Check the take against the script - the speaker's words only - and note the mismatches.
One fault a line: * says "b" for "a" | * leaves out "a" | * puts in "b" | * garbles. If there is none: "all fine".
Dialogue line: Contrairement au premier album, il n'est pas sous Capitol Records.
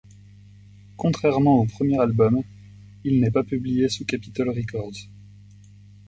* puts in "publié"